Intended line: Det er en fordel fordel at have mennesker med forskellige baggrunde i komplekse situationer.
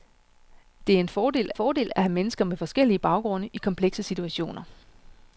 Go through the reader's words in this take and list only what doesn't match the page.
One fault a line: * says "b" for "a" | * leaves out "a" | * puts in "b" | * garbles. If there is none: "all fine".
all fine